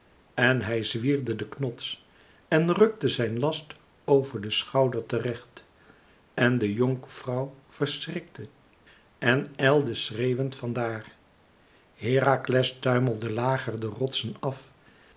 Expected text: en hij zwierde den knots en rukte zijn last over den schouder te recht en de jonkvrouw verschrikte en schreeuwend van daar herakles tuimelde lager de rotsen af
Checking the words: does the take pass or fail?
fail